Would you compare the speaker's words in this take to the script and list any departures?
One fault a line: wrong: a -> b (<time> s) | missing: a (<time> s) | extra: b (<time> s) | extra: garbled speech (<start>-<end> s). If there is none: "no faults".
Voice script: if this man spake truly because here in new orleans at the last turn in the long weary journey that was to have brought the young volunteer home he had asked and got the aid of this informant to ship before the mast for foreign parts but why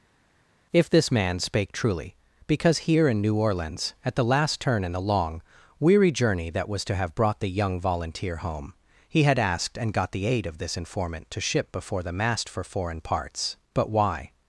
no faults